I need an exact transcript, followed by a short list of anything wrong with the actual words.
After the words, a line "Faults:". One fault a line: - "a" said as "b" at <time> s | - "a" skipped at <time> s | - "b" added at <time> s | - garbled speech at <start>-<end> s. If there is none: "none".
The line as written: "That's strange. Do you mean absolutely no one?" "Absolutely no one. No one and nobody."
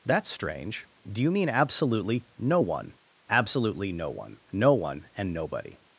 "That's strange. Do you mean absolutely no one?" "Absolutely no one. No one and nobody."
Faults:
none